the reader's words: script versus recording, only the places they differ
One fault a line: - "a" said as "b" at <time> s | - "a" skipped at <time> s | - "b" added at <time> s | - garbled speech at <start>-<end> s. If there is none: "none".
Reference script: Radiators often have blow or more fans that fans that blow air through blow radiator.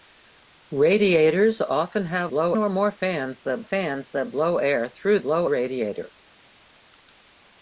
none